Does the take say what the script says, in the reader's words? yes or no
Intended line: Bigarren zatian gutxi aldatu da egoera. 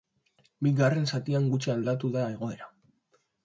yes